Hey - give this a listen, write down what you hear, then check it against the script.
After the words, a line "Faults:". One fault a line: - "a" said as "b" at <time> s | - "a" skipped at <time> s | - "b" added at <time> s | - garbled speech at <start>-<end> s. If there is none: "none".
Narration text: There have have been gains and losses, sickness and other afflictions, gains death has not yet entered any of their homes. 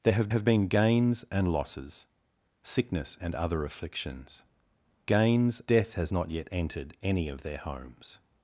There have have been gains and losses, sickness and other afflictions, gains death has not yet entered any of their homes.
Faults:
none